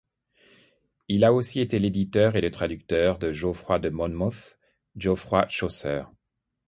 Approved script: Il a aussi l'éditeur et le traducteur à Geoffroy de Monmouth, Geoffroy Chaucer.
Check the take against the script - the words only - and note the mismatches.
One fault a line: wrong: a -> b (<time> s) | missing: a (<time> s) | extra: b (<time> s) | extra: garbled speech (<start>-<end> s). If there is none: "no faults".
extra: été (1.6 s)
wrong: à -> de (3.2 s)